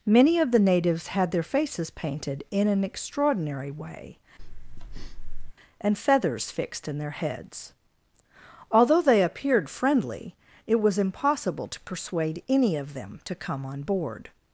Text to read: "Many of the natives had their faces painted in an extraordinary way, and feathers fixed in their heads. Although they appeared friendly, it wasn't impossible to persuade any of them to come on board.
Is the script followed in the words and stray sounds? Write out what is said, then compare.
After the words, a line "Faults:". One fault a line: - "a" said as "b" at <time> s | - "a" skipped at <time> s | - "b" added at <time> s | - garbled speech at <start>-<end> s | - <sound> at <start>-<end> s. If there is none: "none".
"Many of the natives had their faces painted in an extraordinary way, and feathers fixed in their heads. Although they appeared friendly, it was impossible to persuade any of them to come on board.
Faults:
- breath at 4.4-5.5 s
- "wasn't" said as "was" at 10.8 s